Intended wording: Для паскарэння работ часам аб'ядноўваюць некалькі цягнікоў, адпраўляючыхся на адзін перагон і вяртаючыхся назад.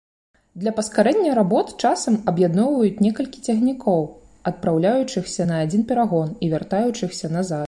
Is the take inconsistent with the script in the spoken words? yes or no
no